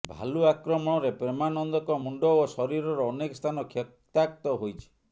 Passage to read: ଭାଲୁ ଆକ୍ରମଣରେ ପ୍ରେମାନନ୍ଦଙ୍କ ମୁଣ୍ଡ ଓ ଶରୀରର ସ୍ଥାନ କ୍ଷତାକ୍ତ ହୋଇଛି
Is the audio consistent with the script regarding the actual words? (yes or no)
no